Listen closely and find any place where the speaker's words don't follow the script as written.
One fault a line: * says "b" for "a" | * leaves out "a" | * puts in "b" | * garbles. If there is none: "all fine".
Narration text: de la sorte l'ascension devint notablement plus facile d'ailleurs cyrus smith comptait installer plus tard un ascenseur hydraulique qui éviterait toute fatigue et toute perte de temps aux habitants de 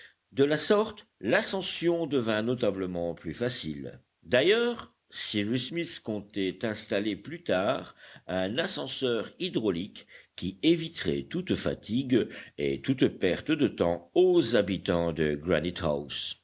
all fine